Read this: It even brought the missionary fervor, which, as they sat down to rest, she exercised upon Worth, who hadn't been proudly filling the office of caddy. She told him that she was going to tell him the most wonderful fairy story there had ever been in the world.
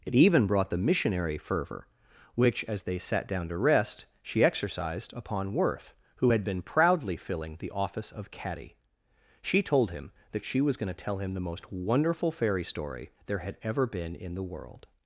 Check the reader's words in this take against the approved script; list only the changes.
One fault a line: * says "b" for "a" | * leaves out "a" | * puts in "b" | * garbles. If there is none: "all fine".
* says "had" for "hadn't"